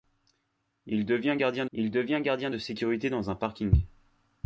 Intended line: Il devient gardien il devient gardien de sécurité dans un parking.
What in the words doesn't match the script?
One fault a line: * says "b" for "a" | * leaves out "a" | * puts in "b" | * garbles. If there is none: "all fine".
all fine